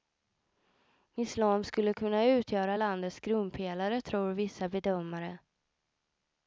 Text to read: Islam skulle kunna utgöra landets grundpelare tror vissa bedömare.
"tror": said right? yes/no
yes